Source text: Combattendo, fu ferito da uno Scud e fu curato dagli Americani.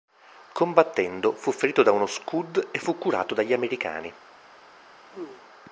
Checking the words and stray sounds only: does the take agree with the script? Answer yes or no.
no